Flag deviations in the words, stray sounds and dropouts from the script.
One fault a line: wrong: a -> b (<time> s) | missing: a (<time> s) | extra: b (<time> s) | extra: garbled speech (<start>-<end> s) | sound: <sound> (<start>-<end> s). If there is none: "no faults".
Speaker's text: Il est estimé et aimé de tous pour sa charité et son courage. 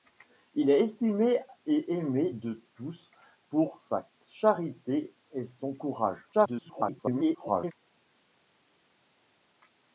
extra: garbled speech (6.3-7.7 s)